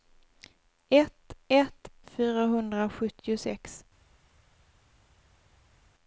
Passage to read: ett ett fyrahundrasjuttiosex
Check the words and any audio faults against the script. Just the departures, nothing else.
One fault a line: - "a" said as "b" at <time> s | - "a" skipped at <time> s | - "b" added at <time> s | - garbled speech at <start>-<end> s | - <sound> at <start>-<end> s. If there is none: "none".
none